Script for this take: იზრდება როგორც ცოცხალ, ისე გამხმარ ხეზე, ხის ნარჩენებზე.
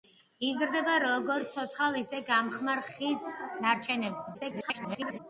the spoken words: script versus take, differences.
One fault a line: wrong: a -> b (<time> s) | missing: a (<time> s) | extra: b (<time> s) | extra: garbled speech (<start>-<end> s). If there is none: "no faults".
missing: ხეზე (2.8 s)
extra: garbled speech (4.3-5.2 s)